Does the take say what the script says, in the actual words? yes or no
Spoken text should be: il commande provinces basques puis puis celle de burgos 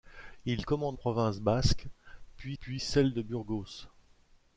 yes